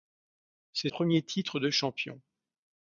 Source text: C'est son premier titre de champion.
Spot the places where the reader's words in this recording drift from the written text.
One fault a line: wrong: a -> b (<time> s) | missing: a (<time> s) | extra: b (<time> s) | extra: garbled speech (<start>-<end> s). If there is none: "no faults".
missing: son (0.9 s)